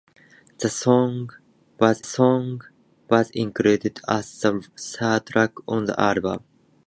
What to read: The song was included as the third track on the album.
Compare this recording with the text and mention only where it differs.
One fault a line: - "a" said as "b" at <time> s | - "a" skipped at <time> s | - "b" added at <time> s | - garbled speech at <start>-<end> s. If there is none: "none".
- "song was" added at 2.0 s